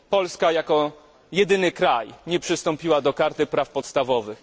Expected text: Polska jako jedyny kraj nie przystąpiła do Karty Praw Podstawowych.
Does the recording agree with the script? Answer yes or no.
yes